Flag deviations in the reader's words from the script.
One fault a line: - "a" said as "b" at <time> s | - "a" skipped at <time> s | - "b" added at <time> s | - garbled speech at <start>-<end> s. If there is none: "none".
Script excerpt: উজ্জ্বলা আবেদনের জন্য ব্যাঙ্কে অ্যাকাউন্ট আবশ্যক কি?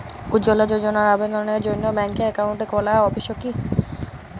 - "যোজনার" added at 0.7 s
- "খোলা" added at 2.7 s